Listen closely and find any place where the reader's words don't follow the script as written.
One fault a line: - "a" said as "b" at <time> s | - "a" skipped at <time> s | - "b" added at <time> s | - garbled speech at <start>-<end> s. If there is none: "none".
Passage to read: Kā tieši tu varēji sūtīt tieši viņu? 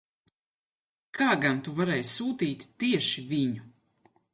- "tieši" said as "gan" at 1.4 s